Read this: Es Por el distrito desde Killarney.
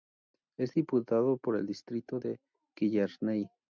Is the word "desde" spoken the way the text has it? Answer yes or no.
no